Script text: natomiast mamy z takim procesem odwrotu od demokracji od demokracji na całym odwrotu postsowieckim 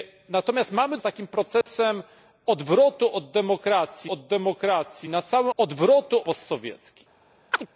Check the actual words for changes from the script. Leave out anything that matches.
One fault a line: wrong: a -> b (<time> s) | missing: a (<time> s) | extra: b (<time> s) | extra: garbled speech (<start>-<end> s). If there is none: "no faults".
no faults